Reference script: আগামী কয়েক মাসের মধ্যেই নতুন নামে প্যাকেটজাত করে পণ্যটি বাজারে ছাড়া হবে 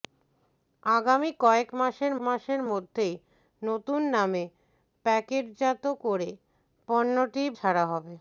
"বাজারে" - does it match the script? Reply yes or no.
no